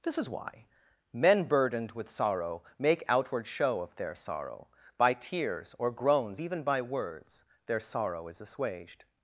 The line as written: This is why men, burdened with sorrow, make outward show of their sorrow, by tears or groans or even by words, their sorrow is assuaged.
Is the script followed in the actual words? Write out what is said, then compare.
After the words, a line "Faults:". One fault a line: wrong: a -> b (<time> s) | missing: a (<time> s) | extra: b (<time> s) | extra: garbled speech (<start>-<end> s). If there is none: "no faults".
This is why men, burdened with sorrow, make outward show of their sorrow, by tears or groans even by words, their sorrow is assuaged.
Faults:
missing: or (6.4 s)